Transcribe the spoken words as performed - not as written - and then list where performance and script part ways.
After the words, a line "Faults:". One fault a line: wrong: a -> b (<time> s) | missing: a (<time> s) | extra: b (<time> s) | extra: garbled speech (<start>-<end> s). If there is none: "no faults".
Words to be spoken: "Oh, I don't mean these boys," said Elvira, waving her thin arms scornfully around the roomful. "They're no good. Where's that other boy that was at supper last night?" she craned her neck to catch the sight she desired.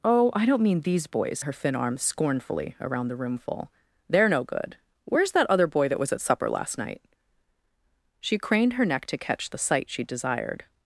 "Oh, I don't mean these boys," her thin arms scornfully around the roomful. "They're no good. Where's that other boy that was at supper last night?" she craned her neck to catch the sight she desired.
Faults:
missing: said Elvira waving (1.4 s)